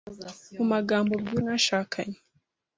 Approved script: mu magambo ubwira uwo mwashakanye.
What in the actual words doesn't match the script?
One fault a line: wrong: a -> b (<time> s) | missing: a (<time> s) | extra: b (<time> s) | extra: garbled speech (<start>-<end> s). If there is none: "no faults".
missing: uwo (1.4 s)